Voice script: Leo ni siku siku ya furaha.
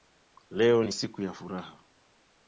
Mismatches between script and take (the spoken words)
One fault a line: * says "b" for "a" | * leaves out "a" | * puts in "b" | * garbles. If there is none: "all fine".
* leaves out "siku"